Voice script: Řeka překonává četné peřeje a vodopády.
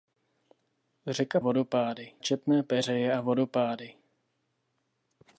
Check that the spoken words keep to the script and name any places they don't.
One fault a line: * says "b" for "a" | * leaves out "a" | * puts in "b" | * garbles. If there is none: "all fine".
* says "vodopády" for "překonává"